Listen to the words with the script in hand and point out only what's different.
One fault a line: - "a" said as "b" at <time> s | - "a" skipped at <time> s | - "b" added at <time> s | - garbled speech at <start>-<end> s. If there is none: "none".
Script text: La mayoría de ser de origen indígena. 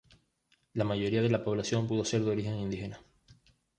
- "la población pudo" added at 1.3 s